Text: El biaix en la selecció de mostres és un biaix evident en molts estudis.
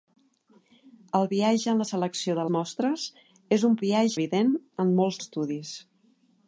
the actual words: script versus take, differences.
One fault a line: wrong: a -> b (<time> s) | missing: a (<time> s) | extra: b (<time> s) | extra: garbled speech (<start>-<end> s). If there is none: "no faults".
no faults